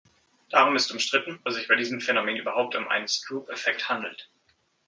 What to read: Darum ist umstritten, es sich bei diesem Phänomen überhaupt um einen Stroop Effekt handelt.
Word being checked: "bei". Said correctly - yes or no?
yes